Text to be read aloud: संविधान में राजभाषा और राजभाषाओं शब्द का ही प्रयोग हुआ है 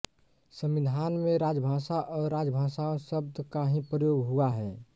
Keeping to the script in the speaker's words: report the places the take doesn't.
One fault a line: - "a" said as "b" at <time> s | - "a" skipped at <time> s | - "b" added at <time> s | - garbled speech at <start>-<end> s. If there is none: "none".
none